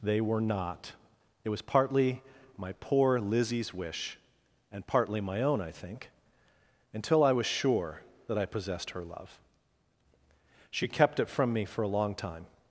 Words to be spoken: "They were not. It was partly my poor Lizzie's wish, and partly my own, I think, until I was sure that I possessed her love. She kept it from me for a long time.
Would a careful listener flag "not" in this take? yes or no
no